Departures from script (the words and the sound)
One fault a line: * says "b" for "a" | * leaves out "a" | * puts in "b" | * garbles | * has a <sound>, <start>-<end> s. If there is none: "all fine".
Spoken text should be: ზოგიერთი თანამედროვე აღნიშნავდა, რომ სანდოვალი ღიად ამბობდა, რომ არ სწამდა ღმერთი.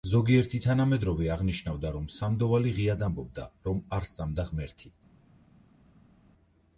all fine